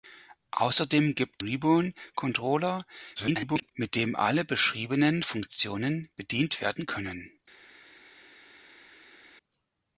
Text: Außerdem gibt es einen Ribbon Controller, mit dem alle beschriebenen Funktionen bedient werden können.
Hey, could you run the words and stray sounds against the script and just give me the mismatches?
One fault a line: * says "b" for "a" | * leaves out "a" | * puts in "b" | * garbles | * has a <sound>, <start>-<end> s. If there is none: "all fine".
* leaves out "es einen"
* garbles